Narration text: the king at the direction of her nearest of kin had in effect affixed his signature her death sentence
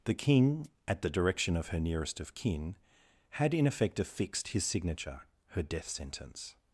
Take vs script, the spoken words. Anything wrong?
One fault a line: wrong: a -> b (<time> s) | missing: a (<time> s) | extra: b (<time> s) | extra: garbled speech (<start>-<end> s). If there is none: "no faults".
no faults